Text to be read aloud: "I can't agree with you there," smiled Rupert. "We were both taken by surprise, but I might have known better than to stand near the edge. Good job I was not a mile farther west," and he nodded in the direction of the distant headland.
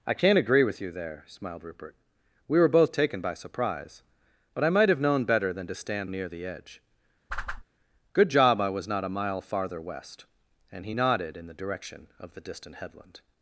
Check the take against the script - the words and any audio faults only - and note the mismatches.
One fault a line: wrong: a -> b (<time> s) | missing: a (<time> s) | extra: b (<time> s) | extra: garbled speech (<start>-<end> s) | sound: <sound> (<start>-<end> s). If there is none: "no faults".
sound: whoosh (7.3-7.6 s)